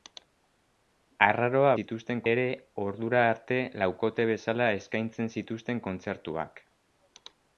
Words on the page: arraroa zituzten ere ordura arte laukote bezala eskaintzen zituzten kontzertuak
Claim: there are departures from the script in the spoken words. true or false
false